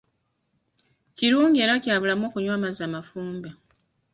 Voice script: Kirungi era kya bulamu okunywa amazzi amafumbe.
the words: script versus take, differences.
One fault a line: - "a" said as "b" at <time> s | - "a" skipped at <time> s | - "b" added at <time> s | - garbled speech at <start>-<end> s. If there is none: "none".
none